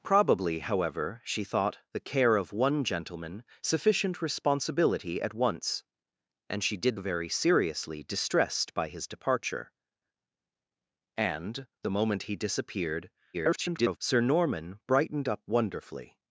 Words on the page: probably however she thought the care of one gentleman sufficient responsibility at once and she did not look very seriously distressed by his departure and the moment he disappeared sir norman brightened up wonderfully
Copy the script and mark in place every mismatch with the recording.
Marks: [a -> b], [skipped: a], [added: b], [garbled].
probably however she thought the care of one gentleman sufficient responsibility at once and she did [skipped: not look] very seriously distressed by his departure and the moment he disappeared [garbled] sir norman brightened up wonderfully